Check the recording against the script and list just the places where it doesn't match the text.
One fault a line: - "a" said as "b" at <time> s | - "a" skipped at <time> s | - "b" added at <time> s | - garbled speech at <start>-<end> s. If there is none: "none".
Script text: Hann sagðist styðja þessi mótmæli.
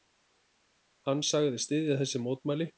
none